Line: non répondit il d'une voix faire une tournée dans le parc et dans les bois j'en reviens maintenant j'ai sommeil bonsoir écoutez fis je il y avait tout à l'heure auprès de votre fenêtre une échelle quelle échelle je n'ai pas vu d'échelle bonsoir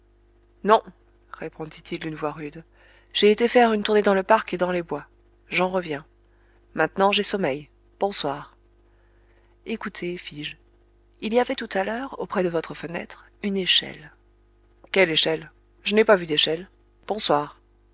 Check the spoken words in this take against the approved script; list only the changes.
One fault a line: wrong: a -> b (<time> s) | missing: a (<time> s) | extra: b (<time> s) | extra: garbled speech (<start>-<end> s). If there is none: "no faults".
extra: rude j'ai été (2.3 s)